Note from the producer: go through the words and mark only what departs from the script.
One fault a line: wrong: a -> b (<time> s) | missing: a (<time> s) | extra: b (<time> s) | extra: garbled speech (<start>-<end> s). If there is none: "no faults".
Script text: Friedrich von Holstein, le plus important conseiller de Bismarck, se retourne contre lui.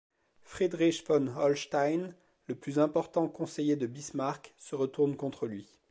no faults